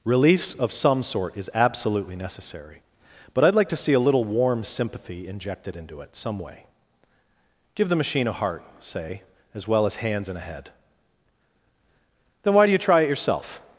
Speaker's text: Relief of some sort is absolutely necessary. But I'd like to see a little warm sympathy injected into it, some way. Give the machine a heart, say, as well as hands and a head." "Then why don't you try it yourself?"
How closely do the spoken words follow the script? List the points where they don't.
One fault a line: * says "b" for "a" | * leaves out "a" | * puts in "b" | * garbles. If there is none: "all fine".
* says "do" for "don't"